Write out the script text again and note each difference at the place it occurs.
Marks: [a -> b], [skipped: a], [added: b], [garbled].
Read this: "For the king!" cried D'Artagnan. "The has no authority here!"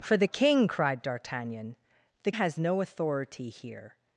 "For the king!" cried D'Artagnan. "The has no authority here!"